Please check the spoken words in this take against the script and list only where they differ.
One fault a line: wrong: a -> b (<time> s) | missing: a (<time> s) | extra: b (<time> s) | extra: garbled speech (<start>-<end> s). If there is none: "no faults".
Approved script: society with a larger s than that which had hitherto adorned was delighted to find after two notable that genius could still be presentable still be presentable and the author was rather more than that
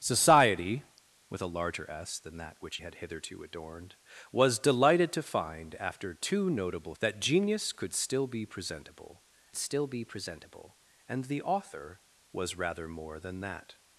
no faults